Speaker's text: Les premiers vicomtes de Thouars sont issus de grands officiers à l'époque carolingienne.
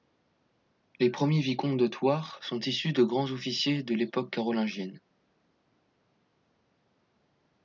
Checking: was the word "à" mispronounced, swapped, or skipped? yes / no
yes